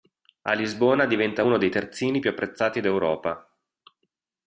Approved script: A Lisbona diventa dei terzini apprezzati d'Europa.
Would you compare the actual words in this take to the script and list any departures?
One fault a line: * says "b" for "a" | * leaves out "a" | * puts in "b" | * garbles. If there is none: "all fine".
* puts in "uno"
* puts in "più"